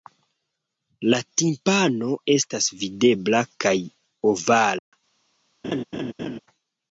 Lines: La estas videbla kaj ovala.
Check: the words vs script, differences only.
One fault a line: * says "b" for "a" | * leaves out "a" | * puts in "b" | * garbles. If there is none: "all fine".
* puts in "timpano"